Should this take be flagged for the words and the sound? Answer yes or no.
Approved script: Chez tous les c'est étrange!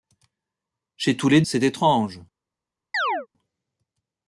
yes